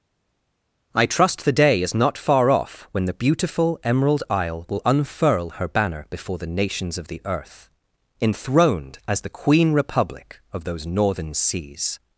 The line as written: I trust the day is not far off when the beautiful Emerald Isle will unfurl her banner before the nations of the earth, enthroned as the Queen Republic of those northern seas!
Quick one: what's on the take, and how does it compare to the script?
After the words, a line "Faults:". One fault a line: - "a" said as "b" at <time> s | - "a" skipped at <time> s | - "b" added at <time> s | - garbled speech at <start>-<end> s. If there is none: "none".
I trust the day is not far off when the beautiful Emerald Isle will unfurl her banner before the nations of the earth, enthroned as the Queen Republic of those northern seas!
Faults:
none